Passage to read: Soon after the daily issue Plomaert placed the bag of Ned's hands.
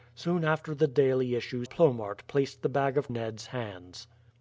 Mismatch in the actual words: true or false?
false